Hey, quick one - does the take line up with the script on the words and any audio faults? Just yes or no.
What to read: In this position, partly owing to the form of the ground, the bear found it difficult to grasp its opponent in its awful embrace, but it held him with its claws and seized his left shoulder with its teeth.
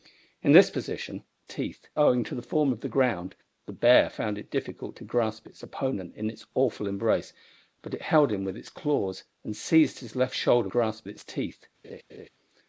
no